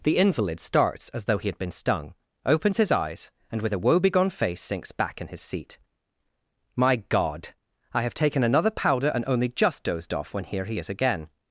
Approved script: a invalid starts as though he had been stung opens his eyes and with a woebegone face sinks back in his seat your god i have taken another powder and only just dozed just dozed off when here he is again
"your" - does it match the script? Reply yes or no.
no